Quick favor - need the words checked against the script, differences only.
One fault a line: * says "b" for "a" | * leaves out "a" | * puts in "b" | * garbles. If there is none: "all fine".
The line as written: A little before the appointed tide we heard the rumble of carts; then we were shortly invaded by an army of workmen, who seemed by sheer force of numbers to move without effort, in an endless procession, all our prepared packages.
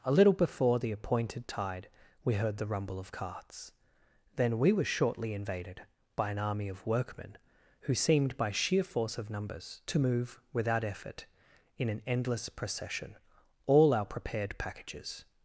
all fine